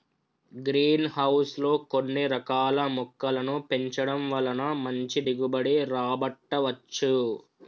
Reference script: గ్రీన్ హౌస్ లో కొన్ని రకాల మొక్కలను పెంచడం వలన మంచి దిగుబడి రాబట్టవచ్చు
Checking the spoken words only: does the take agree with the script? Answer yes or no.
yes